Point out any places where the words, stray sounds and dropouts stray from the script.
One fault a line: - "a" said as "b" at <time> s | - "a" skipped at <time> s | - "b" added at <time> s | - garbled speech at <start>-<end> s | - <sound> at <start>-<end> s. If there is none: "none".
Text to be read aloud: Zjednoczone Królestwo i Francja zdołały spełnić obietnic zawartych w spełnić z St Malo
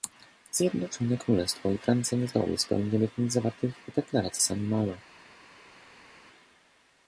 - "nie" added at 2.2 s
- "spełnić" said as "deklaracji" at 4.0 s